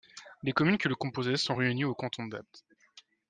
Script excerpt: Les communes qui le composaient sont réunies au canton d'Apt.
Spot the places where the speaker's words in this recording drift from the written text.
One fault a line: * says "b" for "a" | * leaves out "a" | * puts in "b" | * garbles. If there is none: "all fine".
all fine